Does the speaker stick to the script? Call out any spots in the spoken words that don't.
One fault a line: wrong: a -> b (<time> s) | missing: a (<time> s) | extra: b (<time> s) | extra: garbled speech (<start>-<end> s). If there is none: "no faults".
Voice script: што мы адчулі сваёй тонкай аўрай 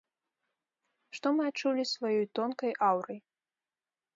no faults